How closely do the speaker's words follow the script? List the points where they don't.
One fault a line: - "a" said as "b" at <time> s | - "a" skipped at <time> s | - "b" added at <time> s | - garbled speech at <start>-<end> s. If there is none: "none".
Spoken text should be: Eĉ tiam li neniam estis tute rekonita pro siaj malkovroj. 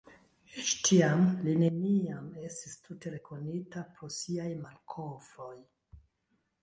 none